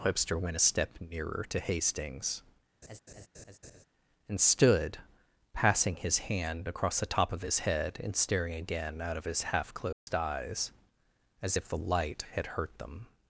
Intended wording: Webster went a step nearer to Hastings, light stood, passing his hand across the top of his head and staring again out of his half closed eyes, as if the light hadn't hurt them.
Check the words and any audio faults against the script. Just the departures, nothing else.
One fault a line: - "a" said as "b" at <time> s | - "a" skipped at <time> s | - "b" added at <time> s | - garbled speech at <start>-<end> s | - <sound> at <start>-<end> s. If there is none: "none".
- laugh at 2.8-3.8 s
- "light" said as "and" at 4.3 s
- dropout at 9.9-10.1 s
- "hadn't" said as "had" at 12.3 s